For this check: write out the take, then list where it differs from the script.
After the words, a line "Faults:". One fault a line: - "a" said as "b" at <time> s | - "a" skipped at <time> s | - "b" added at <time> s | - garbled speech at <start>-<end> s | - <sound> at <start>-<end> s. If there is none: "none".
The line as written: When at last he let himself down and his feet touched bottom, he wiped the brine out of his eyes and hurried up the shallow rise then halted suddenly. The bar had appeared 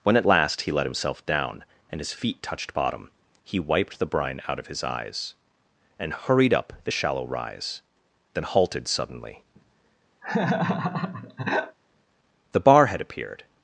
When at last he let himself down and his feet touched bottom, he wiped the brine out of his eyes and hurried up the shallow rise then halted suddenly. The bar had appeared
Faults:
- laugh at 10.2-11.8 s